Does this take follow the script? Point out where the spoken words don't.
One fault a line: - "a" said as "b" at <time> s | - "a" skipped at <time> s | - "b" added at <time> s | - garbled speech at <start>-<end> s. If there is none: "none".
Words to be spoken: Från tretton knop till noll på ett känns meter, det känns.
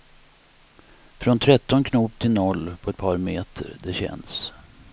- "känns" said as "par" at 3.0 s